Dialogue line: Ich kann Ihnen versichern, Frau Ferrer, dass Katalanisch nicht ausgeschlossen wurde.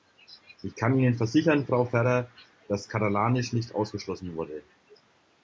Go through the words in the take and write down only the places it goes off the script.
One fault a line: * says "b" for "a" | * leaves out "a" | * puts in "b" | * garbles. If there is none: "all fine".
all fine